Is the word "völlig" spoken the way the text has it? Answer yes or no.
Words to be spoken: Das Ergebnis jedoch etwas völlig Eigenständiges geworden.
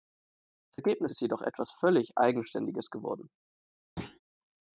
yes